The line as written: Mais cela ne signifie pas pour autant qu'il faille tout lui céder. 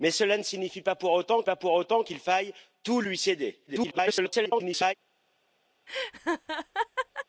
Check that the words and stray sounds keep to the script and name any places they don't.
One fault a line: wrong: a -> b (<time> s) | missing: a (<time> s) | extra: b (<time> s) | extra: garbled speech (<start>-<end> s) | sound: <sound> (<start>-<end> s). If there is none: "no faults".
extra: pas pour autant (1.4 s)
extra: garbled speech (3.7-4.9 s)
sound: laugh (5.9-7.3 s)